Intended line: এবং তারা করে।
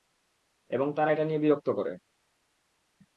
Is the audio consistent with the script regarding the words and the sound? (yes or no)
no